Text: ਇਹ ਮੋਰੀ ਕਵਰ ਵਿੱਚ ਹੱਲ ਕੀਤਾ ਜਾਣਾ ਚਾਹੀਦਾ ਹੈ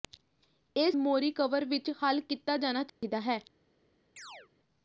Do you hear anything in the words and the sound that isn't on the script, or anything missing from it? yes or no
yes